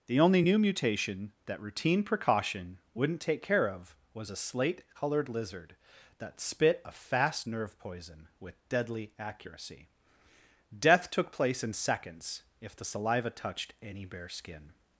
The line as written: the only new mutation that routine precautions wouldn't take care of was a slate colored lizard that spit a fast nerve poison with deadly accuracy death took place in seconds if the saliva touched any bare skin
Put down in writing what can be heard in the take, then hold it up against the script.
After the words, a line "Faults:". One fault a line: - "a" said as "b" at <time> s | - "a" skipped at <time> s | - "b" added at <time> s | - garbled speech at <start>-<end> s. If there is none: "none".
the only new mutation that routine precaution wouldn't take care of was a slate colored lizard that spit a fast nerve poison with deadly accuracy death took place in seconds if the saliva touched any bare skin
Faults:
- "precautions" said as "precaution" at 2.0 s